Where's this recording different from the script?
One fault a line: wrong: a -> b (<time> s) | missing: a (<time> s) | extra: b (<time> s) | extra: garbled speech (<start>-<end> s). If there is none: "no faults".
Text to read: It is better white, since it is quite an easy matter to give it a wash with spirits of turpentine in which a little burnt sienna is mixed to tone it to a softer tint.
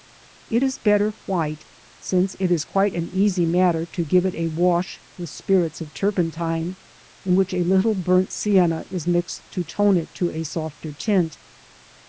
no faults